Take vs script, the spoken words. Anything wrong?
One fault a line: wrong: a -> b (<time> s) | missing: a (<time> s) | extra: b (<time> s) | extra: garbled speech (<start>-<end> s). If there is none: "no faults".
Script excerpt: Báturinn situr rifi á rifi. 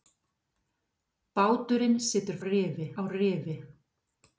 no faults